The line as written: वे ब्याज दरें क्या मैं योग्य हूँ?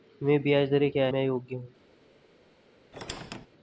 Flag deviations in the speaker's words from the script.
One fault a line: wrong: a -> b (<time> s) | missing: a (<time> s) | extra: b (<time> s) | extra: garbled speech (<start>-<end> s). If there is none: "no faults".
no faults